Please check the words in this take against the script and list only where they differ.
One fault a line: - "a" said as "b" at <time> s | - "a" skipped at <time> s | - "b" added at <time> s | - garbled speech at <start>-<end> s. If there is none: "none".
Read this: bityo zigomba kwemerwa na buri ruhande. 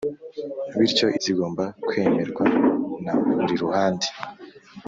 none